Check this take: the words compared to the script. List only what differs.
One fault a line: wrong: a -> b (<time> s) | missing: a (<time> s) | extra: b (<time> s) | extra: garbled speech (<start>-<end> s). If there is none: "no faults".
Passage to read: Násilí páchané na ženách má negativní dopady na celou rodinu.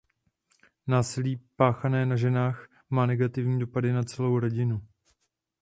no faults